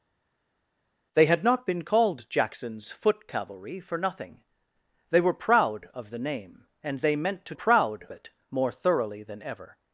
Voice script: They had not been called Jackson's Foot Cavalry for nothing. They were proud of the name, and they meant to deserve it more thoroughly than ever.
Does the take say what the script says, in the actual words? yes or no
no